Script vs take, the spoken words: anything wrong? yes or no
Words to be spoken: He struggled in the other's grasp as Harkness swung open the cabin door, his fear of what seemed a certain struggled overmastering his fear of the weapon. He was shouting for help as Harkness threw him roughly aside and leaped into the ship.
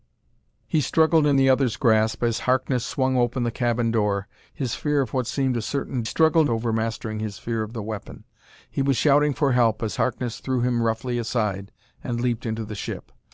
no